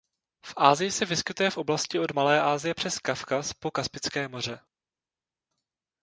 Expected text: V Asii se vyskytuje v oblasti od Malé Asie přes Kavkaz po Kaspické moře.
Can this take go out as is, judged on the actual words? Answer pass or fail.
pass